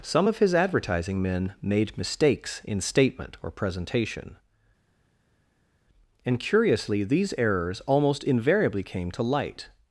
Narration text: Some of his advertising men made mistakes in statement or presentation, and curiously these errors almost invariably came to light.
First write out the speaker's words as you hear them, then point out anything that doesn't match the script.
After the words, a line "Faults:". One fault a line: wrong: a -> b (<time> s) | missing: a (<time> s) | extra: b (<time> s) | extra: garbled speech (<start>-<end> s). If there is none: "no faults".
Some of his advertising men made mistakes in statement or presentation, and curiously these errors almost invariably came to light.
Faults:
no faults